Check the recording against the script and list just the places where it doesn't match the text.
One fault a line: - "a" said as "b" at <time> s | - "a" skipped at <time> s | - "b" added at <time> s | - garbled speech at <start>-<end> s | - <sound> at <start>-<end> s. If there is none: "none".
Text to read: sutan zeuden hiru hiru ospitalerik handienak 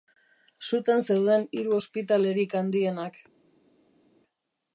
- "hiru" skipped at 1.8 s